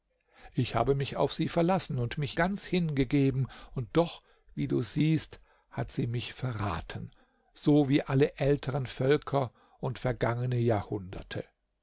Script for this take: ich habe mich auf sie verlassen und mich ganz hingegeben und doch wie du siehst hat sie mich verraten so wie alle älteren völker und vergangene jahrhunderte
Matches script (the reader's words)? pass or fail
pass